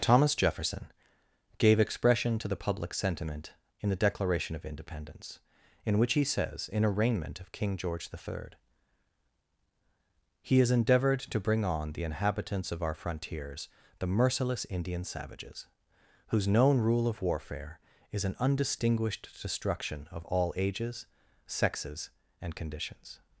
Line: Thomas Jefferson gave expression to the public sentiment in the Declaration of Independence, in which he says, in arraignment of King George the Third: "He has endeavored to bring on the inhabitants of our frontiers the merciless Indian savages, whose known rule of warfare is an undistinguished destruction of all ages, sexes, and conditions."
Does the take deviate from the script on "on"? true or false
false